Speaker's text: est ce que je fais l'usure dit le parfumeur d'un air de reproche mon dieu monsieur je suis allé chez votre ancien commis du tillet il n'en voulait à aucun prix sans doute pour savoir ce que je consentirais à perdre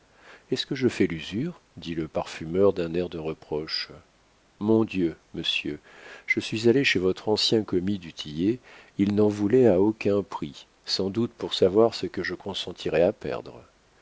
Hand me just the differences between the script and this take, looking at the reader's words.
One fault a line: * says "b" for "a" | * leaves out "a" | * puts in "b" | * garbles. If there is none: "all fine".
all fine